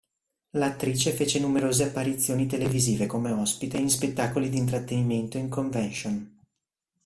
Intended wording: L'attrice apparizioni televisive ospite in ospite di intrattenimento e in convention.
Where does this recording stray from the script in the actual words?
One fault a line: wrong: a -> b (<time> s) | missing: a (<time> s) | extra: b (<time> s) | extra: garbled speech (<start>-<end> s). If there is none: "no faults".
extra: fece numerose (1.1 s)
extra: come (3.1 s)
wrong: ospite -> spettacoli (3.9 s)